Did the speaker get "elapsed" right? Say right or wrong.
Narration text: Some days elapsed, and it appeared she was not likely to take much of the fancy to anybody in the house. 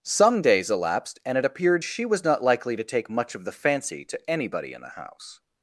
right